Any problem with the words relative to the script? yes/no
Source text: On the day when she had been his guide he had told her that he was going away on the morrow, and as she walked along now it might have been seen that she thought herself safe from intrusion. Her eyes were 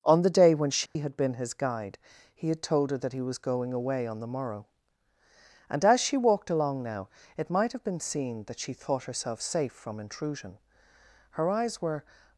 no